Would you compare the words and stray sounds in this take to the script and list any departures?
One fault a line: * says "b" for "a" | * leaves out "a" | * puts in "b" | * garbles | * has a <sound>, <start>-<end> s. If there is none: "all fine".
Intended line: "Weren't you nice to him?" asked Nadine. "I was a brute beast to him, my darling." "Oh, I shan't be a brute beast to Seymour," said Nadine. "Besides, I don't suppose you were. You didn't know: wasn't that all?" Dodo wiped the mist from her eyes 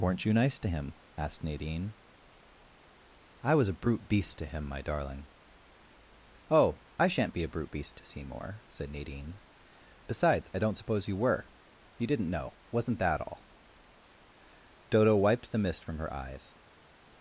all fine